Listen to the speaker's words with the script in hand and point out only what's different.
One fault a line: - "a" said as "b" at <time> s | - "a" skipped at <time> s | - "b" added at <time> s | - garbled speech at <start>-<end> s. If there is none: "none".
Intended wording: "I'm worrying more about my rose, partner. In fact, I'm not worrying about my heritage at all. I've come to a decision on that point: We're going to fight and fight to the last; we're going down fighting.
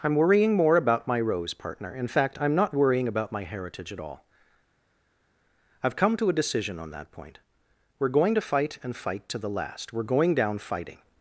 none